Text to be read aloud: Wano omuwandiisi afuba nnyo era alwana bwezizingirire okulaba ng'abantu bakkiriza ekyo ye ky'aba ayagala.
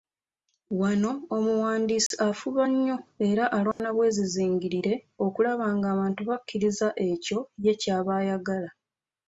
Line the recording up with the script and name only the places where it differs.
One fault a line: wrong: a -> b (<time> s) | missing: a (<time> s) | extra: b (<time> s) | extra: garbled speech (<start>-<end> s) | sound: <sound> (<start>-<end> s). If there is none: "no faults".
sound: dropout (2.1-2.1 s)
sound: dropout (3.7-3.8 s)